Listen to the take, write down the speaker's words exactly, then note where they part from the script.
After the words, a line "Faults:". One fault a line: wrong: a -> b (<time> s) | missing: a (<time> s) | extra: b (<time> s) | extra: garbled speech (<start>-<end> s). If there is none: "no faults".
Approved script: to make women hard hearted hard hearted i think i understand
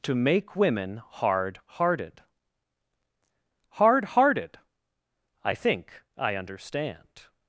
to make women hard hearted hard hearted i think i understand
Faults:
no faults